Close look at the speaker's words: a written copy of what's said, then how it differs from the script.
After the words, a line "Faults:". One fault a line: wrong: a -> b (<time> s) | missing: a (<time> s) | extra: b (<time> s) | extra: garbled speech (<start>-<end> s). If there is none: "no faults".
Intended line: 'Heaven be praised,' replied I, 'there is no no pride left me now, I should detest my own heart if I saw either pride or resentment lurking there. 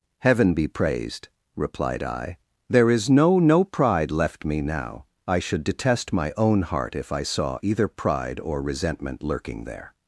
'Heaven be praised,' replied I, 'there is no no pride left me now, I should detest my own heart if I saw either pride or resentment lurking there.
Faults:
no faults